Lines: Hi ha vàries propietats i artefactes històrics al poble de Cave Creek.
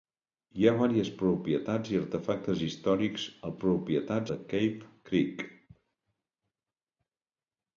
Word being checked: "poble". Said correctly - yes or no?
no